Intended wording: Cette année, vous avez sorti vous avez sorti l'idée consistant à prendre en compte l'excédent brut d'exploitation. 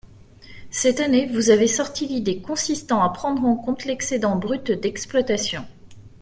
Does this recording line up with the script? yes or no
no